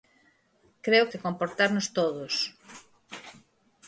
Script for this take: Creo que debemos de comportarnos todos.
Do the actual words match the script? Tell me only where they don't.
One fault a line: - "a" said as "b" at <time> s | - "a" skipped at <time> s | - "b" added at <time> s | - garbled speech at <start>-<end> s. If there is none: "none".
- "que debemos" skipped at 1.1 s